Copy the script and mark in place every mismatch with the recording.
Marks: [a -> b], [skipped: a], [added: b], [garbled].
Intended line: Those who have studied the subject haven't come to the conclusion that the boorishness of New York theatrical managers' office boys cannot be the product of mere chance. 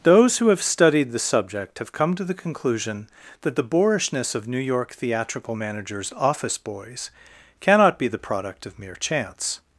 Those who have studied the subject [haven't -> have] come to the conclusion that the boorishness of New York theatrical managers' office boys cannot be the product of mere chance.